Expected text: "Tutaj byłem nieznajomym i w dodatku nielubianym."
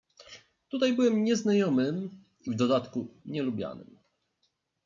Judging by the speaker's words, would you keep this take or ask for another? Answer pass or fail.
pass